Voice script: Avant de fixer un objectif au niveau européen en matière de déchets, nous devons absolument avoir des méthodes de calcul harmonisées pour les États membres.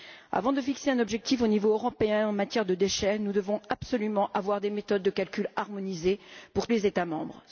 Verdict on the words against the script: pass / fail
pass